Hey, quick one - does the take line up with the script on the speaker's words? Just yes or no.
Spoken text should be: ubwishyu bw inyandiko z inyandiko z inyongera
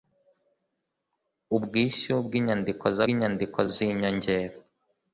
yes